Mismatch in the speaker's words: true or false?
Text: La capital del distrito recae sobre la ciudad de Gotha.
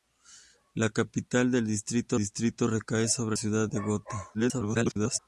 true